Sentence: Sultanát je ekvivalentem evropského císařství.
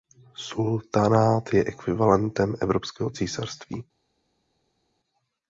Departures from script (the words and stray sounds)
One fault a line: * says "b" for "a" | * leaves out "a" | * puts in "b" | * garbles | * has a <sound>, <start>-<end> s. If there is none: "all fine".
all fine